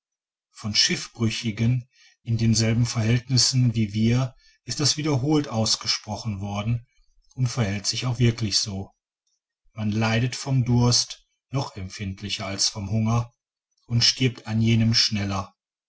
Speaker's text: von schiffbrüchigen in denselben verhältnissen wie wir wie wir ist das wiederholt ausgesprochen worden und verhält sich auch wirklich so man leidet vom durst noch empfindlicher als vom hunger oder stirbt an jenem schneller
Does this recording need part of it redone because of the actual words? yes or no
yes